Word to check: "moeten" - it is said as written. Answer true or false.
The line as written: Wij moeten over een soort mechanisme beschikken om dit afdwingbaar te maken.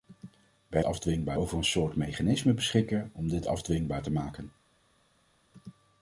false